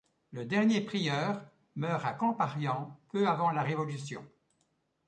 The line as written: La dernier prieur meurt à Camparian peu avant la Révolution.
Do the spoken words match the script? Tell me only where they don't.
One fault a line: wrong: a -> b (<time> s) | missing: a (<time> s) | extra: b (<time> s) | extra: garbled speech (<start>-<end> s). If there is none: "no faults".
wrong: La -> Le (0.3 s)